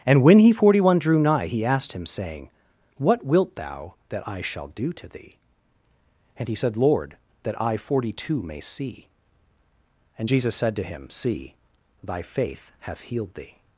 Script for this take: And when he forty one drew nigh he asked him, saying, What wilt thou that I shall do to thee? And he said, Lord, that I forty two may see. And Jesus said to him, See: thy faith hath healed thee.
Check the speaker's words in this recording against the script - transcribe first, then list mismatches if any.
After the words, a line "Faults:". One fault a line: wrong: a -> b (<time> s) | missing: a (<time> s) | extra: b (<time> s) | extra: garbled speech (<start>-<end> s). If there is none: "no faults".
And when he forty one drew nigh he asked him, saying, What wilt thou that I shall do to thee? And he said, Lord, that I forty two may see. And Jesus said to him, See: thy faith hath healed thee.
Faults:
no faults